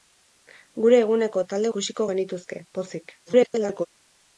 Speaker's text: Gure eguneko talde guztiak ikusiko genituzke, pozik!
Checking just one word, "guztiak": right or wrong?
wrong